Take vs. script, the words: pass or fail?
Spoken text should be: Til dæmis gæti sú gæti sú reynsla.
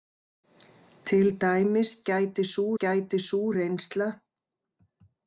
pass